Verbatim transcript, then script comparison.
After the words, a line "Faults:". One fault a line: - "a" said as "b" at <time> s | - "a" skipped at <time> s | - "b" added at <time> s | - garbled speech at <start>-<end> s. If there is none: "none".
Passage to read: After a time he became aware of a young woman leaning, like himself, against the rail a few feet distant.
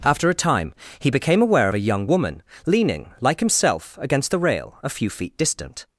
After a time he became aware of a young woman leaning, like himself, against the rail a few feet distant.
Faults:
none